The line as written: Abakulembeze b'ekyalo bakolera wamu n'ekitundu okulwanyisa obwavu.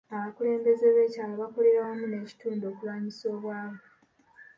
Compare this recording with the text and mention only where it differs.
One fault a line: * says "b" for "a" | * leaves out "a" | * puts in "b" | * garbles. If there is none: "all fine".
all fine